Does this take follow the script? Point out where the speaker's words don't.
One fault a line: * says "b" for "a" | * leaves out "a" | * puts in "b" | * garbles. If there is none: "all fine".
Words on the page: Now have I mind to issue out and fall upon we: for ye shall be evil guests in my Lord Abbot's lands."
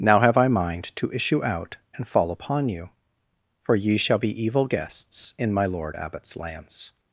* says "you" for "we"